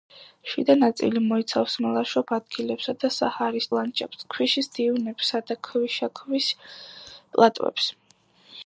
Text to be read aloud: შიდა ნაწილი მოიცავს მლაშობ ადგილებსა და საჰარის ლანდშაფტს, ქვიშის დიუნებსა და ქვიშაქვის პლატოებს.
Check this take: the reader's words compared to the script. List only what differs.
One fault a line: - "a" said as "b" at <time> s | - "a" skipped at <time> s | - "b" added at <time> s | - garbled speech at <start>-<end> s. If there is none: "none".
none